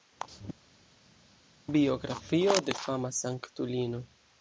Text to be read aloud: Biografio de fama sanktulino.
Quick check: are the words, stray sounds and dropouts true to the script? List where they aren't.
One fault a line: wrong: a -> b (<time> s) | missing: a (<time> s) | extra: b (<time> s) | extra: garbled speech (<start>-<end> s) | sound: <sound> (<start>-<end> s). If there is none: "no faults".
no faults